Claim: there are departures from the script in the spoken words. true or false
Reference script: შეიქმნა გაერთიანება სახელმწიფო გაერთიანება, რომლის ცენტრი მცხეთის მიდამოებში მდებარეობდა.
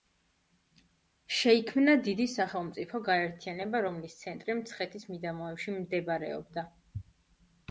true